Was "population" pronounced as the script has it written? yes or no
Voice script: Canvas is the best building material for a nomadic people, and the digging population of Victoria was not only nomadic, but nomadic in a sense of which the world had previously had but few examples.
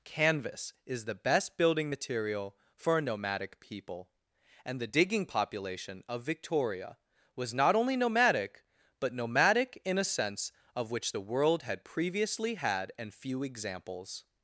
yes